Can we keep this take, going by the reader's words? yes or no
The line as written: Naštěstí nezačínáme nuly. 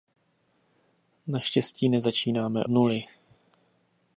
yes